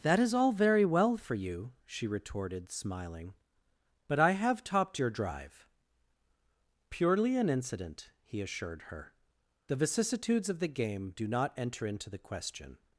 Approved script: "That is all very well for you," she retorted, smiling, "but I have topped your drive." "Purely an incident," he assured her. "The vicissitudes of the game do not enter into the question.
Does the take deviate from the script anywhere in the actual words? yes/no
no